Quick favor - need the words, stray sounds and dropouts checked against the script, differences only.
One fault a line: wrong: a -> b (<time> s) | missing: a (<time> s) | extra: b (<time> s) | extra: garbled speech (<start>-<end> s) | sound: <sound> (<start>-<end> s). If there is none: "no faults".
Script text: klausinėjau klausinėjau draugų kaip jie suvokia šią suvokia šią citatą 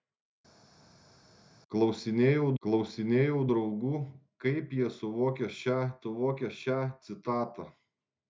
no faults